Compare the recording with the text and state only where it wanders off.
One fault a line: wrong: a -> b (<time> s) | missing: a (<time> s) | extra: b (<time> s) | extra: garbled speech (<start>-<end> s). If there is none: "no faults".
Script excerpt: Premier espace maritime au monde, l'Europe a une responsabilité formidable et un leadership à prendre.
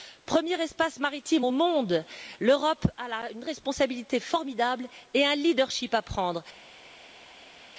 no faults